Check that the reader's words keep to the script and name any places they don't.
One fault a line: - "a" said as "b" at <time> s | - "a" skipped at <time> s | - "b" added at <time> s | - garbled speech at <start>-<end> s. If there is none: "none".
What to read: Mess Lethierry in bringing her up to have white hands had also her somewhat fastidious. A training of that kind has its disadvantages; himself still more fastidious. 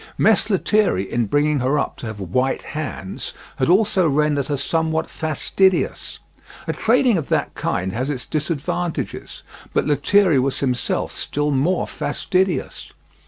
- "rendered" added at 4.1 s
- "but Lethierry was" added at 9.7 s